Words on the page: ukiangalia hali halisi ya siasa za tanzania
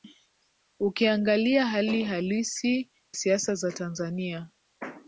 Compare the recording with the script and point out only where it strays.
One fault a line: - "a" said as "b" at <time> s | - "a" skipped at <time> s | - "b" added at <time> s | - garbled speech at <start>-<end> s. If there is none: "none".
- "ya" skipped at 2.9 s